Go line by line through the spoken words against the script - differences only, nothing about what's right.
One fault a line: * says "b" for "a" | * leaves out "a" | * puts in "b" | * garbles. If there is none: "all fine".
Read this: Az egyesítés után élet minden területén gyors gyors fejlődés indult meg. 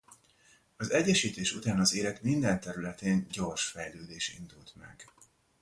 * puts in "az"
* leaves out "gyors"